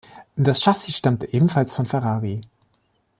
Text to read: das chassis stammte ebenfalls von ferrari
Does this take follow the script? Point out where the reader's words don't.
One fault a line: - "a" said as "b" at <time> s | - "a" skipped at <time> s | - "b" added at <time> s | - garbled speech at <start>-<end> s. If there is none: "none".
none